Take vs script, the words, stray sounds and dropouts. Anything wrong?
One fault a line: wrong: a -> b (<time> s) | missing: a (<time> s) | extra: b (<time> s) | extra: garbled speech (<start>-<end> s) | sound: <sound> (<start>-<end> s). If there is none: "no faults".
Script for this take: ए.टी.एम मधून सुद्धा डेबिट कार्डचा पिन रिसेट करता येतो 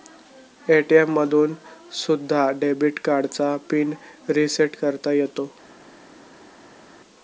no faults